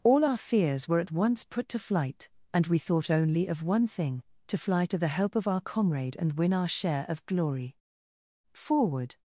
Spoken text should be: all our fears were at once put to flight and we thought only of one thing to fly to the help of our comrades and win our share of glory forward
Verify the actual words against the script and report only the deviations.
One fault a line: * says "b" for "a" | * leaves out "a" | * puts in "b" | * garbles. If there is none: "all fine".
* says "comrade" for "comrades"